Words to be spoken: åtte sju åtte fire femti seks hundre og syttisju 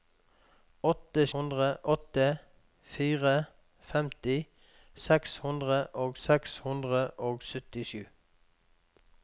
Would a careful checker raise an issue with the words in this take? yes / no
yes